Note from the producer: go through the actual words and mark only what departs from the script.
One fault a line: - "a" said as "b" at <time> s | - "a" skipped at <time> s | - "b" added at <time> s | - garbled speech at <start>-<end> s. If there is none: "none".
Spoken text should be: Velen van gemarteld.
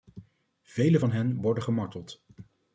- "hen worden" added at 1.1 s